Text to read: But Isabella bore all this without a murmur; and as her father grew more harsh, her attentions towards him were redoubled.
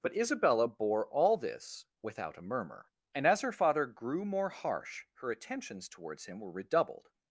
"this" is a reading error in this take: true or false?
false